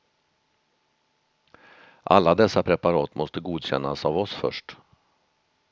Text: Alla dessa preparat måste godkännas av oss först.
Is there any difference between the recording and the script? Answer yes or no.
no